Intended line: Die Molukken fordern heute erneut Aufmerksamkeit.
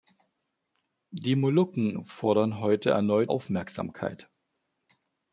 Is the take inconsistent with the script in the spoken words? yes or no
no